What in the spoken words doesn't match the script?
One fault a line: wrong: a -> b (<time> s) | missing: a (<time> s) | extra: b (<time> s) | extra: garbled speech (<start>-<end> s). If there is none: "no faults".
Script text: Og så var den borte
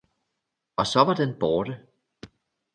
no faults